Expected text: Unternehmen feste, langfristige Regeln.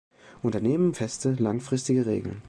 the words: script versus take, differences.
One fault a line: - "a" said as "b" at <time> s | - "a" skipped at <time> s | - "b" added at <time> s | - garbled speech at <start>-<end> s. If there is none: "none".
none